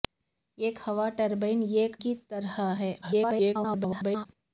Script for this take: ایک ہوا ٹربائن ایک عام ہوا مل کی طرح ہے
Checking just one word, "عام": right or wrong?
wrong